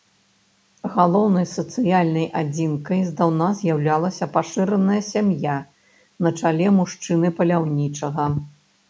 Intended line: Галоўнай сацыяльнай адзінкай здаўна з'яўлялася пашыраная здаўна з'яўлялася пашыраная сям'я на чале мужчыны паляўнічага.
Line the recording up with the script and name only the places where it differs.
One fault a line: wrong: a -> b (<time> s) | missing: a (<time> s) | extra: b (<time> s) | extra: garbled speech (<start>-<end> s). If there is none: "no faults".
missing: здаўна з'яўлялася пашыраная (5.0 s)